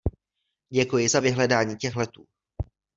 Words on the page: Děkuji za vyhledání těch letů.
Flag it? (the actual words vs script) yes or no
no